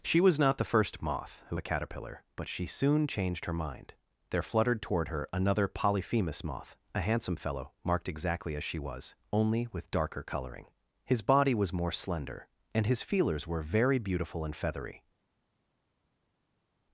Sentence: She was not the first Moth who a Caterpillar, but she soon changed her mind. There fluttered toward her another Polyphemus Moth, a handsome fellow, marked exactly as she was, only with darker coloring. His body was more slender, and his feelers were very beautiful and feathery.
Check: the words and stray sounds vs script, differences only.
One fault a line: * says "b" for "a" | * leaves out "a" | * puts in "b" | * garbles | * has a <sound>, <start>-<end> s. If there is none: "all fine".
all fine